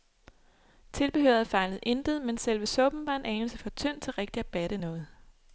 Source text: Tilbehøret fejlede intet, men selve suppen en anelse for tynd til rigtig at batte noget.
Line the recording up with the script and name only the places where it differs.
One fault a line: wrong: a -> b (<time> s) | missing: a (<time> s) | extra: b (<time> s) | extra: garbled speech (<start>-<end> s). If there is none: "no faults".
extra: var (3.1 s)